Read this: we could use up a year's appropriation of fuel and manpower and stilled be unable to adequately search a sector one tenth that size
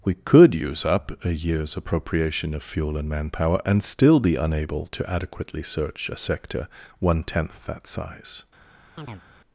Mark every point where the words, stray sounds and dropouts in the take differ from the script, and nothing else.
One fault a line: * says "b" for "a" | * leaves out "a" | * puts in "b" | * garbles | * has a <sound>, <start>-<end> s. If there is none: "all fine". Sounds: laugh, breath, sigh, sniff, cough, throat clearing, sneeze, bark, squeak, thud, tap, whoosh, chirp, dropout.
* says "still" for "stilled"
* has a chirp, 9.0-9.2 s